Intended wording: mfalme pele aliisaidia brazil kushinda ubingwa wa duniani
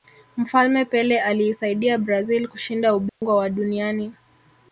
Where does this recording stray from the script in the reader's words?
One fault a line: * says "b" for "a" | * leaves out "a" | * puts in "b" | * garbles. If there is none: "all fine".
all fine